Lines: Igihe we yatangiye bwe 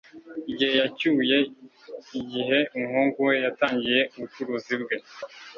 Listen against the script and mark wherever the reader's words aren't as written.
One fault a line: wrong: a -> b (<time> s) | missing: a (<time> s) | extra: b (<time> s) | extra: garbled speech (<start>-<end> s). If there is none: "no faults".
extra: yacyuye igihe umuhungu (0.8 s)
extra: ubucuruzi (4.1 s)